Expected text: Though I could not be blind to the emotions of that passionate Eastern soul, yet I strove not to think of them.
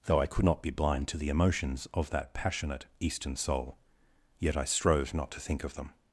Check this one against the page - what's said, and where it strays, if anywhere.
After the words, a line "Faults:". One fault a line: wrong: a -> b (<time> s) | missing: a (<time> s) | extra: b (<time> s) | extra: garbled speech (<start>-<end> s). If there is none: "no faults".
Though I could not be blind to the emotions of that passionate Eastern soul, yet I strove not to think of them.
Faults:
no faults